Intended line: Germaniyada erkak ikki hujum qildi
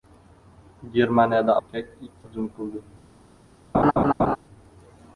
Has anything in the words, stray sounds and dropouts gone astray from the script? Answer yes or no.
yes